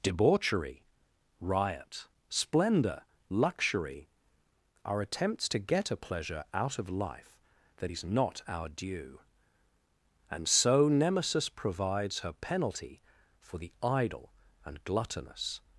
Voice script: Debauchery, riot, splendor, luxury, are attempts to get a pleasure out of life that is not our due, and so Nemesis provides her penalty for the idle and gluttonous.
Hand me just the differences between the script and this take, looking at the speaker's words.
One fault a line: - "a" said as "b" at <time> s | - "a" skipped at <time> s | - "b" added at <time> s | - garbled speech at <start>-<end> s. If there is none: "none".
none